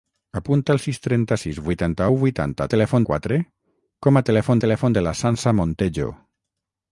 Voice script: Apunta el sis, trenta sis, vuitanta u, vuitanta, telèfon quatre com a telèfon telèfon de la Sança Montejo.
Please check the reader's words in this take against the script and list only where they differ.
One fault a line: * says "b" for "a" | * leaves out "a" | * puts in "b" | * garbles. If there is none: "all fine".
all fine